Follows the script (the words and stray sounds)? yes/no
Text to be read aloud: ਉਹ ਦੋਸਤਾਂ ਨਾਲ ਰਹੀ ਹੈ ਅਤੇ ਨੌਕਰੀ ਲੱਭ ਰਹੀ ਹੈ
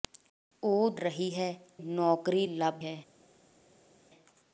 no